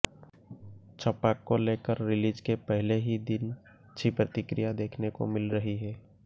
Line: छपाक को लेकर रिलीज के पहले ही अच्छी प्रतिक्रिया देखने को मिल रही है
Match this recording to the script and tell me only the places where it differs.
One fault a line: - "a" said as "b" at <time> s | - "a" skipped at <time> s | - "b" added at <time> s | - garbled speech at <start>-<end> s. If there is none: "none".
- "दिन" added at 3.3 s